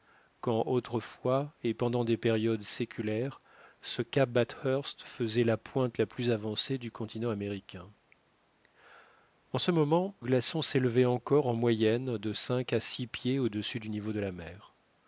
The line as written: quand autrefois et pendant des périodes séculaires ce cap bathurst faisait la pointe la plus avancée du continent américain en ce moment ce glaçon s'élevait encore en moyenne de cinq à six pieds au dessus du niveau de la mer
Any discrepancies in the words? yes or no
yes